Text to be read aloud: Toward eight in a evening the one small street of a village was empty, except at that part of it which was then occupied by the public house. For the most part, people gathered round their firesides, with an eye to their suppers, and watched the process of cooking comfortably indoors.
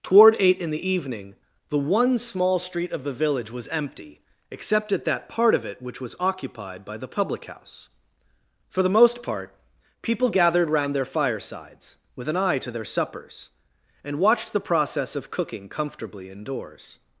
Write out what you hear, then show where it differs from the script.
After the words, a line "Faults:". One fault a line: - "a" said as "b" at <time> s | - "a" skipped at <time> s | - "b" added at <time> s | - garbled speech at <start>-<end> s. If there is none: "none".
Toward eight in the evening the one small street of the village was empty, except at that part of it which was occupied by the public house. For the most part, people gathered round their firesides, with an eye to their suppers, and watched the process of cooking comfortably indoors.
Faults:
- "a" said as "the" at 0.7 s
- "a" said as "the" at 3.0 s
- "then" skipped at 6.2 s